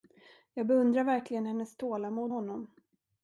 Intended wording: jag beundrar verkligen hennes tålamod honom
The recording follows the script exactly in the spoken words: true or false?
true